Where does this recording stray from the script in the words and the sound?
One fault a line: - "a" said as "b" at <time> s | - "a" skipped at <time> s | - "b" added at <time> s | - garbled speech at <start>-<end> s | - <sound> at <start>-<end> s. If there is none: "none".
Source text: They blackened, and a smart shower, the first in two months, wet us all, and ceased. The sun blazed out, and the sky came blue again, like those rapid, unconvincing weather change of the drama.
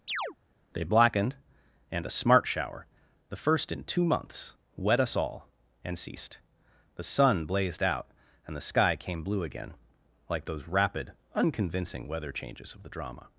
- chirp at 0.1-0.4 s
- "change" said as "changes" at 12.3 s